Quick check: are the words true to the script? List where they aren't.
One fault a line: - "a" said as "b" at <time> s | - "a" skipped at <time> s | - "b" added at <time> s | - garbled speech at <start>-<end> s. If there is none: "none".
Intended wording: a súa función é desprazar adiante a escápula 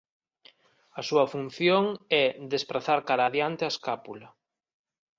- "cara" added at 3.1 s